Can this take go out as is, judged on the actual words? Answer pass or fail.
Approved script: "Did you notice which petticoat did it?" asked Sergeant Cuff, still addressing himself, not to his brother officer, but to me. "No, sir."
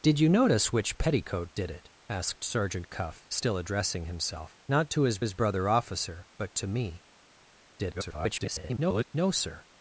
fail